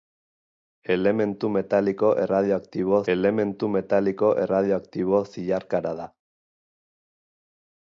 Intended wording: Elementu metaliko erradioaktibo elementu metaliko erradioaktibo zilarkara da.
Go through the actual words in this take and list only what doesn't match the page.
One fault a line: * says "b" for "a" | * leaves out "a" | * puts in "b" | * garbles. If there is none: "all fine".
all fine